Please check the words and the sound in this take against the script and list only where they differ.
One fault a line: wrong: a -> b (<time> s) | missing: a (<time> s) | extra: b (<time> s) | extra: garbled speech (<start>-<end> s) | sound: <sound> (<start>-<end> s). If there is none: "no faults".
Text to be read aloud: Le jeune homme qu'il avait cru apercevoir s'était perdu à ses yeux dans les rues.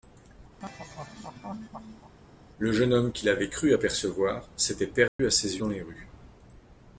sound: laugh (0.6-2.1 s)
sound: dropout (5.1-5.2 s)
missing: yeux (5.6 s)